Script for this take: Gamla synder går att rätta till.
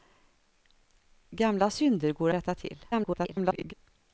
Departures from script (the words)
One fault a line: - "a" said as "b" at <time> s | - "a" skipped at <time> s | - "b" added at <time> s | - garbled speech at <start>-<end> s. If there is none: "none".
- "att" skipped at 2.3 s
- garbled speech at 2.9-3.7 s